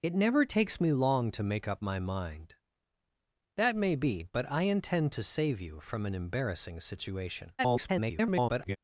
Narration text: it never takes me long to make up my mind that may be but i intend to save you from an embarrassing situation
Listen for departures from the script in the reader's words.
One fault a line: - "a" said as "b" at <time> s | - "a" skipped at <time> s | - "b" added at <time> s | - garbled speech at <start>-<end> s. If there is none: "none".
- garbled speech at 7.6-8.8 s